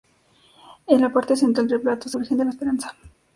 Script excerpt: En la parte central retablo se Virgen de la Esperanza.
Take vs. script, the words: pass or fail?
pass